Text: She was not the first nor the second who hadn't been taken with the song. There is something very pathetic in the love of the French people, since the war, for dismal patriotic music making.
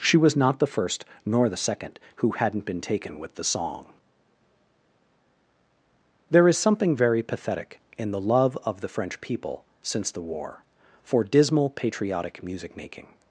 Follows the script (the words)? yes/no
yes